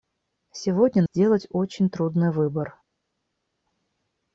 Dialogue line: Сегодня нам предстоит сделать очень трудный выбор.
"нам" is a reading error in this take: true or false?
true